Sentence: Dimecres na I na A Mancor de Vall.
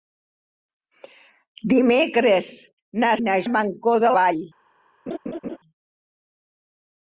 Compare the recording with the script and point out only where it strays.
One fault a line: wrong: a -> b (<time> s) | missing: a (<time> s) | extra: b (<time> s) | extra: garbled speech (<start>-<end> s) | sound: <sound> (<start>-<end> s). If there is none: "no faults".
sound: laugh (5.1-5.6 s)